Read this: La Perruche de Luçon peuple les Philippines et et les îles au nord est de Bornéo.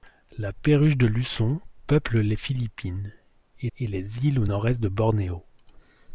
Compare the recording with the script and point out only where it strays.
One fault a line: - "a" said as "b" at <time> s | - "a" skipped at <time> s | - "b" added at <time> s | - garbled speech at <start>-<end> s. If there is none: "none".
none